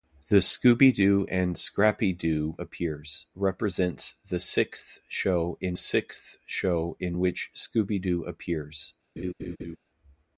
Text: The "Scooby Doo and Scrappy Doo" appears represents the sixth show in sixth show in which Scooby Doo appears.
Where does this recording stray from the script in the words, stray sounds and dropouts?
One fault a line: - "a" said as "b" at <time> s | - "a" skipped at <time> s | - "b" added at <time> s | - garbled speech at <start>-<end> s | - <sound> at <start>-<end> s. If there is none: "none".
- laugh at 9.2-9.8 s